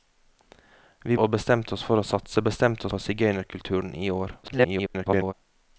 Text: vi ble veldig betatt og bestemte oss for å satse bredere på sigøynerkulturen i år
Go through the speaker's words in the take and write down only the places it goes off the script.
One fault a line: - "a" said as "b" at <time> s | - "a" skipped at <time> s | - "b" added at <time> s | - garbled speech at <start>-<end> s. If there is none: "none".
- "ble veldig betatt" skipped at 1.2 s
- "bredere" said as "bestemte" at 2.5 s
- garbled speech at 4.4-5.3 s